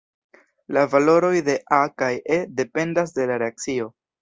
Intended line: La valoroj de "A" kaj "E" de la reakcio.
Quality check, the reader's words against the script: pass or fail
fail